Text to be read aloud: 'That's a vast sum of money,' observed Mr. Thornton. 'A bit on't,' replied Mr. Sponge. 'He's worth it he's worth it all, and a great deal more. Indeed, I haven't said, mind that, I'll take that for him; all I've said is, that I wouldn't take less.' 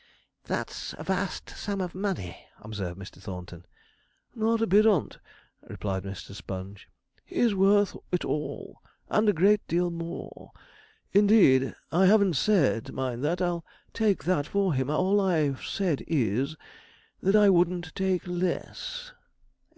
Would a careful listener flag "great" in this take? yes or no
no